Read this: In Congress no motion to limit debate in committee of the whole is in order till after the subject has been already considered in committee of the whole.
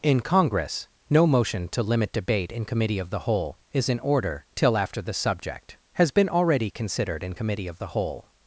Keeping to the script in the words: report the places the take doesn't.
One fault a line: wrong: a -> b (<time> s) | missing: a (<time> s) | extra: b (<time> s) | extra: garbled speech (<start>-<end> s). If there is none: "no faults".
no faults